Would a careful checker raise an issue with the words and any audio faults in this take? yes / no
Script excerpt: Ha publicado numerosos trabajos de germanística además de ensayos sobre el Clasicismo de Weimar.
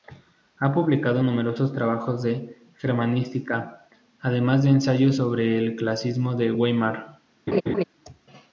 yes